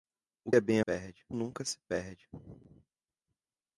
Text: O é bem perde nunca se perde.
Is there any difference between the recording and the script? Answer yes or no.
no